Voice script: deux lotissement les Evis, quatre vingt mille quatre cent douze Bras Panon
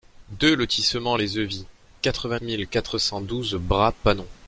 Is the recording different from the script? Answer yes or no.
no